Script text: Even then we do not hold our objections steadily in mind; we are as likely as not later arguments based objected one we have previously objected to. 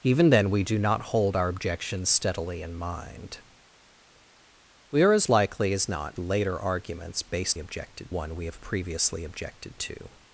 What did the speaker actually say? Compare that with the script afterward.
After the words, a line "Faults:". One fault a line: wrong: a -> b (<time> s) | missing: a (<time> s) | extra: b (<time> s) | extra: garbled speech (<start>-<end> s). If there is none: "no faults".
Even then we do not hold our objections steadily in mind; we are as likely as not later arguments based objected one we have previously objected to.
Faults:
no faults